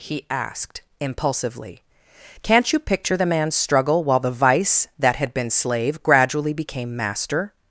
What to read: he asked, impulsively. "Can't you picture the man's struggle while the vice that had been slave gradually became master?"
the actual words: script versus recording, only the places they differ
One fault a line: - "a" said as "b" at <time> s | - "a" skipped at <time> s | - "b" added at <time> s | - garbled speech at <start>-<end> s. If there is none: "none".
none